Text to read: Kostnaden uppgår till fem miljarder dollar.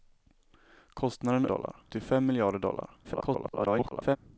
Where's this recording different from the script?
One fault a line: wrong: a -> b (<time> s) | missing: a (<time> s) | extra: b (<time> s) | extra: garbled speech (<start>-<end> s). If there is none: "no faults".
wrong: uppgår -> dollar (1.4 s)
extra: garbled speech (3.0-4.2 s)